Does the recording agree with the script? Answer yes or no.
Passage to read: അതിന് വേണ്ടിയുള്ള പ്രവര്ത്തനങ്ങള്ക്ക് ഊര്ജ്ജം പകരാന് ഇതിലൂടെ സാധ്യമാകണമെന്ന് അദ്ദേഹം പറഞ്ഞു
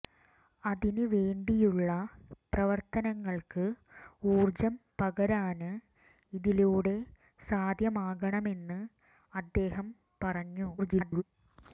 no